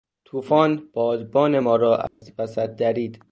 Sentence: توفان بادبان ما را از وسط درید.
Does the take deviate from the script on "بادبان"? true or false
false